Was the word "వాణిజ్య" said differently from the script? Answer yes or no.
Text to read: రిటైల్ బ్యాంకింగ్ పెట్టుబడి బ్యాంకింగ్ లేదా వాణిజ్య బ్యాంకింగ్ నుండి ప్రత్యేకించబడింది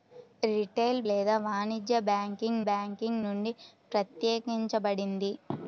yes